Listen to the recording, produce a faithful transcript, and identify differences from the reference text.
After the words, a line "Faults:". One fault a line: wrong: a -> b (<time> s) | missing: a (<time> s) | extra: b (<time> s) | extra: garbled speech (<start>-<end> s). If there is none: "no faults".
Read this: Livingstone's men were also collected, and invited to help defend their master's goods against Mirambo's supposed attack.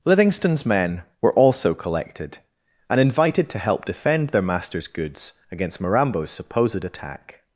Livingstone's men were also collected, and invited to help defend their master's goods against Mirambo's supposed attack.
Faults:
no faults